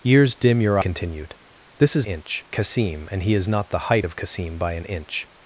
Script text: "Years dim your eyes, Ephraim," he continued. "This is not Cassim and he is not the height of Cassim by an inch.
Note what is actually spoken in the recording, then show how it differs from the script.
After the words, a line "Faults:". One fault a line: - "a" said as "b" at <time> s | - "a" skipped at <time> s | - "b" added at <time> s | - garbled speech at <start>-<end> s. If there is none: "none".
"Years dim your continued. "This is inch Cassim and he is not the height of Cassim by an inch.
Faults:
- "eyes Ephraim he" skipped at 0.8 s
- "not" said as "inch" at 2.0 s